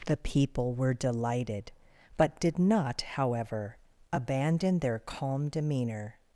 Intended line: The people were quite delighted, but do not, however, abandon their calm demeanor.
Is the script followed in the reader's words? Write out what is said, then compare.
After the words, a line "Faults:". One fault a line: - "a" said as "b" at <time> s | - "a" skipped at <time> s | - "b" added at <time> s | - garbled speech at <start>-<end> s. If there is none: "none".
The people were delighted, but did not, however, abandon their calm demeanor.
Faults:
- "quite" skipped at 0.9 s
- "do" said as "did" at 2.4 s